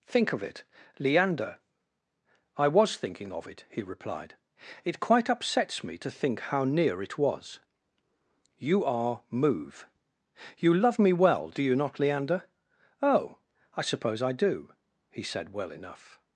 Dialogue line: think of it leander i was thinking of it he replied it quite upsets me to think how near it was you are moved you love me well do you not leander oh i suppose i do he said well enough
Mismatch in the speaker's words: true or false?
true